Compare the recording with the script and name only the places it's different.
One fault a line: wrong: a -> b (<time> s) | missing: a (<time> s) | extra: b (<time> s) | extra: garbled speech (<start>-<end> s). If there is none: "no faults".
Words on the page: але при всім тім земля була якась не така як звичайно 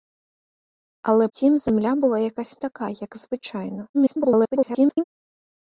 missing: при всім (1.3 s)
missing: не (2.6 s)
extra: garbled speech (3.9-5.0 s)